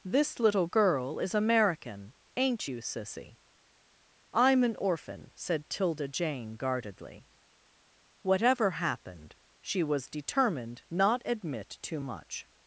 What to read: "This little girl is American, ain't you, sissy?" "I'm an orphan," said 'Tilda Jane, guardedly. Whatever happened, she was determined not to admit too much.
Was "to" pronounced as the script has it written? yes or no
no